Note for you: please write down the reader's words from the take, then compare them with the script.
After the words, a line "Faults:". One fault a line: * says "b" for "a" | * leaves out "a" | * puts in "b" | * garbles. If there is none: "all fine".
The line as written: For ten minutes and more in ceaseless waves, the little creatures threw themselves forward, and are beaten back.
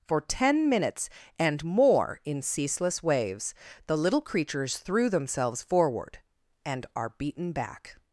For ten minutes and more in ceaseless waves, the little creatures threw themselves forward, and are beaten back.
Faults:
all fine